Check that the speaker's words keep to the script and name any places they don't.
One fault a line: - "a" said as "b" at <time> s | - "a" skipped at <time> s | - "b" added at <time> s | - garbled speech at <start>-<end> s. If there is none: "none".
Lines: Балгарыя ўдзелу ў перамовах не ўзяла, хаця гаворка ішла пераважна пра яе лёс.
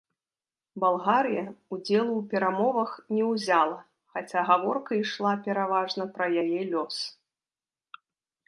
none